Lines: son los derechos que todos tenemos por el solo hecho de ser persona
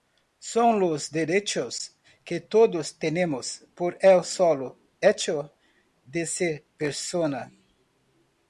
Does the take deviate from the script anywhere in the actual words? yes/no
no